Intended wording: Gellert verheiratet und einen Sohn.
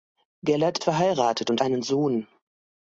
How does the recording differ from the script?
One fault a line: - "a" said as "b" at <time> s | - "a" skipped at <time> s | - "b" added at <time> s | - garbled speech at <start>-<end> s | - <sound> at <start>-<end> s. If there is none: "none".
none